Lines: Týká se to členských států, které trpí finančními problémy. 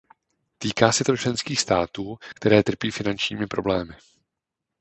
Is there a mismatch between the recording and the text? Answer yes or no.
no